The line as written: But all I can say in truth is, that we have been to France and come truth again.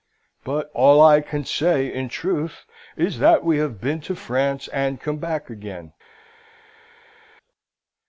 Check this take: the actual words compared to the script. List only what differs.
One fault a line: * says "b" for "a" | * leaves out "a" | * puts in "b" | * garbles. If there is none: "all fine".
* says "back" for "truth"